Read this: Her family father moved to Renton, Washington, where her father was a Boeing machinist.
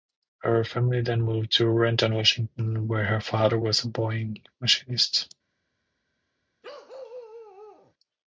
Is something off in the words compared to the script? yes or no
yes